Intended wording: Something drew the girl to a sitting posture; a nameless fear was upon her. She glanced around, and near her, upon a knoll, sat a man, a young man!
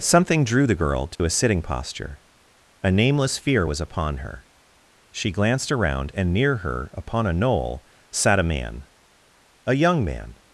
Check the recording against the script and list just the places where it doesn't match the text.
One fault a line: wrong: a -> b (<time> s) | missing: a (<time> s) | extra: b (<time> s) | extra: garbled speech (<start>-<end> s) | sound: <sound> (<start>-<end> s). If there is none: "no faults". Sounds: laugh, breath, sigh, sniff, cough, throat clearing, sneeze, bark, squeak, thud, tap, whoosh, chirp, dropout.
sound: dropout (1.2-1.2 s)